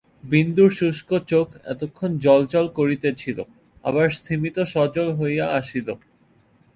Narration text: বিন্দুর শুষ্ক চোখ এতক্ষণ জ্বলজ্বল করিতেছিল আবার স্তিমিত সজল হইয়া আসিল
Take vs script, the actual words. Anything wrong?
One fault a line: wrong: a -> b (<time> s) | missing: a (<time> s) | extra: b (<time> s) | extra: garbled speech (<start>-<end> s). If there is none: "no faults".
no faults